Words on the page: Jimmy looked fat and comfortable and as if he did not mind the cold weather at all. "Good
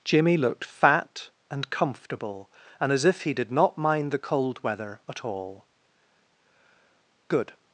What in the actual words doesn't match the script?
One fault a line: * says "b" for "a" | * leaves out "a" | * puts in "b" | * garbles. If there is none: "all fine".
all fine